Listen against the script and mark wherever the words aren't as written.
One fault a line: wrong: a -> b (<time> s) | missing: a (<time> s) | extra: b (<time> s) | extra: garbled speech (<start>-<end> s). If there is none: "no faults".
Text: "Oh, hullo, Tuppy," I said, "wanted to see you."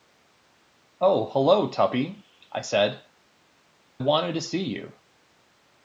no faults